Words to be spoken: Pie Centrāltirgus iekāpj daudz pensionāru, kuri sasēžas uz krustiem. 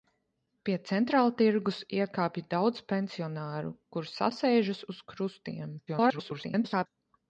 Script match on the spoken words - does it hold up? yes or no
no